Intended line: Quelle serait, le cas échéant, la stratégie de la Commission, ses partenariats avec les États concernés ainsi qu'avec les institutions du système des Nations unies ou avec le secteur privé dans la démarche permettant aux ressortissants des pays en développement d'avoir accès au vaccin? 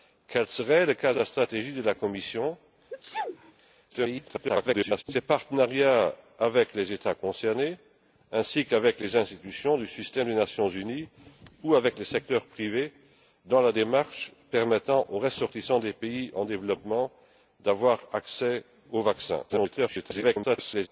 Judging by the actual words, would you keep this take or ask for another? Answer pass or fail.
fail